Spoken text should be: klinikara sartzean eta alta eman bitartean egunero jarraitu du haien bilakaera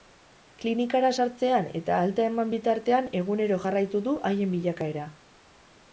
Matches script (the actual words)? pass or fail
pass